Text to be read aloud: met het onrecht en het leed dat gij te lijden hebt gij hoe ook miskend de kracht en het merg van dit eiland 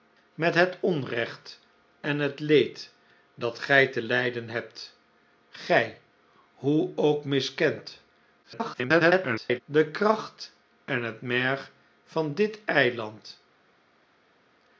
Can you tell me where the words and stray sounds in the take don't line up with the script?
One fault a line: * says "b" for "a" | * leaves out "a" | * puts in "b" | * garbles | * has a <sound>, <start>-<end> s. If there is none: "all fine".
* garbles